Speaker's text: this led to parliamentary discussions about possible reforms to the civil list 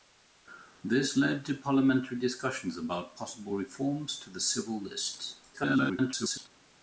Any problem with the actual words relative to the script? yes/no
yes